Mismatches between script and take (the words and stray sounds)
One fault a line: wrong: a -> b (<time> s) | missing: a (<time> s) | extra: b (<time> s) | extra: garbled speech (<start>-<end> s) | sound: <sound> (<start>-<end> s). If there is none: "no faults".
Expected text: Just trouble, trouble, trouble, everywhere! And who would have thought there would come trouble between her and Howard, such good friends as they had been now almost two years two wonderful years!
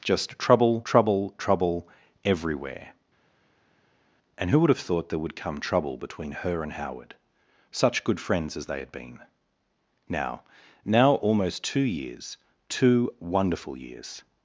extra: now (10.9 s)